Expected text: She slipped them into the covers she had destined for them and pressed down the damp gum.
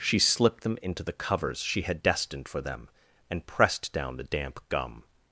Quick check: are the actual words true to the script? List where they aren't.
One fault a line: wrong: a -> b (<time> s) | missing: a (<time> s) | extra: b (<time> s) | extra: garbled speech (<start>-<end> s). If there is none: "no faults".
no faults